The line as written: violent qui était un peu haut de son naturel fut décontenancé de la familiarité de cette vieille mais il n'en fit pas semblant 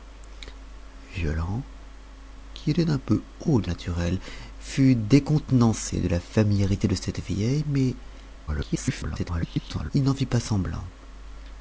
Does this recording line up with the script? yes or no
no